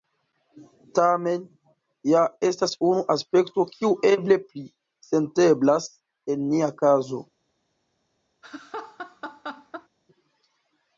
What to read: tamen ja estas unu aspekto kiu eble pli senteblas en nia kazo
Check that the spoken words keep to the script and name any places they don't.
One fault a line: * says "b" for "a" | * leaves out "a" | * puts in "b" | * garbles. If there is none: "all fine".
all fine